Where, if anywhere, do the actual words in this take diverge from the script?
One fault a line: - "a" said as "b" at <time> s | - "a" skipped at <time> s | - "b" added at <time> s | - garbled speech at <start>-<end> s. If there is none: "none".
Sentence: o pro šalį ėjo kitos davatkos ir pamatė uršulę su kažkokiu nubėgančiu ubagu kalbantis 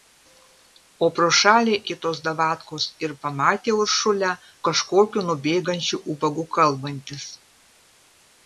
- "ėjo" skipped at 1.8 s
- "su" skipped at 4.3 s